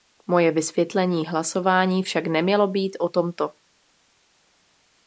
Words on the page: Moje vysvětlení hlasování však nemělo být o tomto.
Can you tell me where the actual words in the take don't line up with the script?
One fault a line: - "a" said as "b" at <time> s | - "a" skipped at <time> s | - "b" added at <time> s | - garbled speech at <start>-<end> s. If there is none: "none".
none